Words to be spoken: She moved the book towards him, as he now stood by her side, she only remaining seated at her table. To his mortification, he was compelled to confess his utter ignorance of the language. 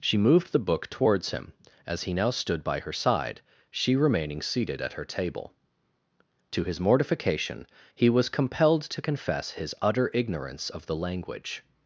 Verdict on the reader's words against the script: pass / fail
fail